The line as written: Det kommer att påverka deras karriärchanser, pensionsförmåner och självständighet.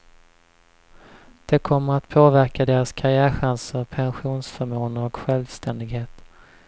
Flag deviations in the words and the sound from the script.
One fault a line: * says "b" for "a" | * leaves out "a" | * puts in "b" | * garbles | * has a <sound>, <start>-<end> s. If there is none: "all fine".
all fine